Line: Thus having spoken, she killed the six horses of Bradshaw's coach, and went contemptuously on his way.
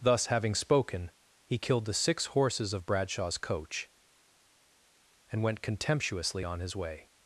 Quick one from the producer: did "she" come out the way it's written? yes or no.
no